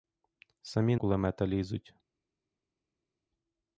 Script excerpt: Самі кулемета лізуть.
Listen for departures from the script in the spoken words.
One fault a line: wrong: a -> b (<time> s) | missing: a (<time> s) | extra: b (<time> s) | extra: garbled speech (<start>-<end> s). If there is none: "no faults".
no faults